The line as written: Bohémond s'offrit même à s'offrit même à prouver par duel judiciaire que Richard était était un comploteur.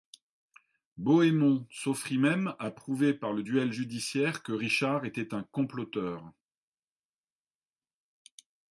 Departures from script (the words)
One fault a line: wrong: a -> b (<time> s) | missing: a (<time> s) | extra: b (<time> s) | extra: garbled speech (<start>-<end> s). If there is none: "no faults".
missing: s'offrit même à (2.7 s)
extra: le (3.3 s)
missing: était (5.3 s)